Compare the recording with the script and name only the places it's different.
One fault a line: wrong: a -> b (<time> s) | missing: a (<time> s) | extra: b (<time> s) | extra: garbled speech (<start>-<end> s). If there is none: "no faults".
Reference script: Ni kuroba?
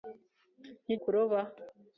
no faults